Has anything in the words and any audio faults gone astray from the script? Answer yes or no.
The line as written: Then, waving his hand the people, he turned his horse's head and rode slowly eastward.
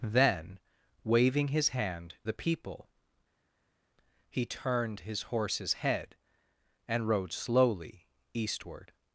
no